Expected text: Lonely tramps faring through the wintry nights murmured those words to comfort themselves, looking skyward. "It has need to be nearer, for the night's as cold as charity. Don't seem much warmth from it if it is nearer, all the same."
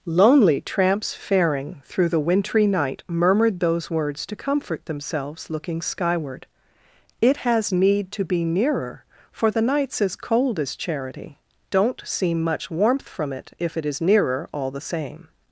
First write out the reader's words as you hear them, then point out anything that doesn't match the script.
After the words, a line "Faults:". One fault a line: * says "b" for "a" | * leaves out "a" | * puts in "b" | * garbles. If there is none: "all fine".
Lonely tramps faring through the wintry night murmured those words to comfort themselves, looking skyward. "It has need to be nearer, for the night's as cold as charity. Don't seem much warmth from it if it is nearer, all the same."
Faults:
* says "night" for "nights"